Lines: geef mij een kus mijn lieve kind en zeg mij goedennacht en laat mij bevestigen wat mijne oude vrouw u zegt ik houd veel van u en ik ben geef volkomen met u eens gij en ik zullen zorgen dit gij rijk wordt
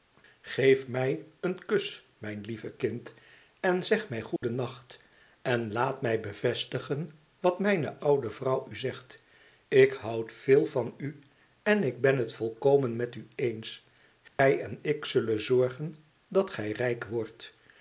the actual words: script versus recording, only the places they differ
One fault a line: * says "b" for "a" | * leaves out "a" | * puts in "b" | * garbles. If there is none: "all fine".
* says "het" for "geef"
* says "dat" for "dit"